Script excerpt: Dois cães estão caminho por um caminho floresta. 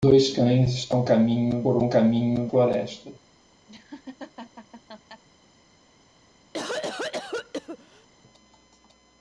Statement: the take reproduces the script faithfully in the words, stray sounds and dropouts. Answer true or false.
false